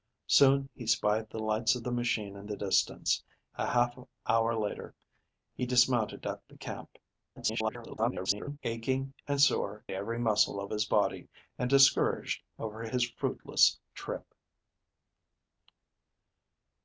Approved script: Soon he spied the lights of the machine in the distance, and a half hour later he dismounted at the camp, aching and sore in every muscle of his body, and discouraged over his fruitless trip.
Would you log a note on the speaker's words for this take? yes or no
yes